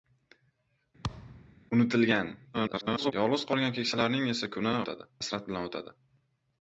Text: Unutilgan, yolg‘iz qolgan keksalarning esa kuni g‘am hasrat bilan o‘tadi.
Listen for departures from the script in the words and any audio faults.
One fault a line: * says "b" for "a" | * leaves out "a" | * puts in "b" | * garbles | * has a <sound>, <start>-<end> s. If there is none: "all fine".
* has a thud, 1.0-1.6 s
* garbles
* says "o‘tadi" for "g‘am"